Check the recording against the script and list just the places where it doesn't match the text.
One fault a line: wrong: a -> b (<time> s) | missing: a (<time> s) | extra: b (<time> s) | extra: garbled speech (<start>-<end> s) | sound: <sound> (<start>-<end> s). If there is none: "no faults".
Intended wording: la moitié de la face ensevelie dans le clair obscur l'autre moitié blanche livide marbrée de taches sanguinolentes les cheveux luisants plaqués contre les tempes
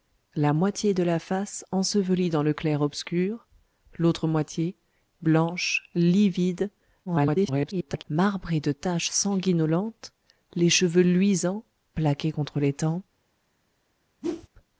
extra: garbled speech (7.1-8.0 s)
sound: whoosh (14.2-14.5 s)